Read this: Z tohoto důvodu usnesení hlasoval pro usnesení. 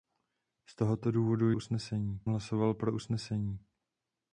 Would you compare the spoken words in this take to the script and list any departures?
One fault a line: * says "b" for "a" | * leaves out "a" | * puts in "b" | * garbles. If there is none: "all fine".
all fine